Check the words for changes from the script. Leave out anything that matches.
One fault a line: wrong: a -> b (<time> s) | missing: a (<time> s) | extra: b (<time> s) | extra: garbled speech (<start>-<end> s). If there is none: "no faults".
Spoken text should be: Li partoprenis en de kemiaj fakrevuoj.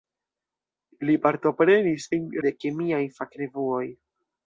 no faults